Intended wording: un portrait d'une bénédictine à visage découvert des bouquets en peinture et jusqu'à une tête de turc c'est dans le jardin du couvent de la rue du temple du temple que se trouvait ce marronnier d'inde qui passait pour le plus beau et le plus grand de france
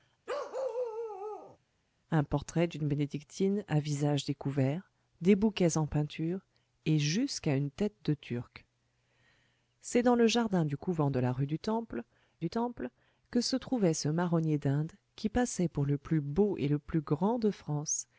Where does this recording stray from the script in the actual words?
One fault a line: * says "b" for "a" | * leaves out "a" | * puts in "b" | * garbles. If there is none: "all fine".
all fine